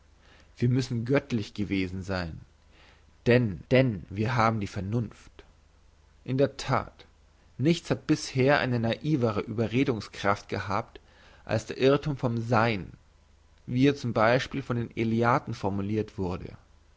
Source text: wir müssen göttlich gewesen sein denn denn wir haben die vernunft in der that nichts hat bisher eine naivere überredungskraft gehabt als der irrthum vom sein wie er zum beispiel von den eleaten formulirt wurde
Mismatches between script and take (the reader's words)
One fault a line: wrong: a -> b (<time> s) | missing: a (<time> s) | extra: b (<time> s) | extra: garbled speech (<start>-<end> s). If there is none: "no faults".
no faults